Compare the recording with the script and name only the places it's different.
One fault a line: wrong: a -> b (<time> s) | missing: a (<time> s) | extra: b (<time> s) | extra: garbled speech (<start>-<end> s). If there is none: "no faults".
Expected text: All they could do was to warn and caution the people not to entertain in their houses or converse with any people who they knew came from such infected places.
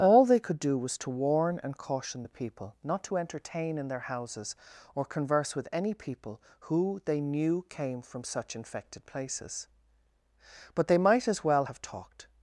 extra: But they might as well have talked (10.7 s)